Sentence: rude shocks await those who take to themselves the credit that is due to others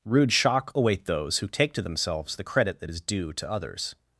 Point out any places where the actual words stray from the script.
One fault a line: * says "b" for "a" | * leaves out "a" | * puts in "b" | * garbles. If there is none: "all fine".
* says "shock" for "shocks"